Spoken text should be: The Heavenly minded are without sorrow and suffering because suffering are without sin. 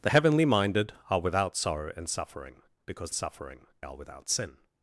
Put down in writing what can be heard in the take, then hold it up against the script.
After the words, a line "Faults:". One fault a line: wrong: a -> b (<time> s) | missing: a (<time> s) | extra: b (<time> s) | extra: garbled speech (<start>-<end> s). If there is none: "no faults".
The Heavenly minded are without sorrow and suffering because suffering are without sin.
Faults:
no faults